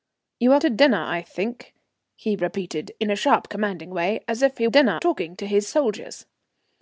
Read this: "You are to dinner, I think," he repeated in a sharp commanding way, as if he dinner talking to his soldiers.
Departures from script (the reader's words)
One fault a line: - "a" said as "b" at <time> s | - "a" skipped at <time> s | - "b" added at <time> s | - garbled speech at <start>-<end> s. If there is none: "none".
none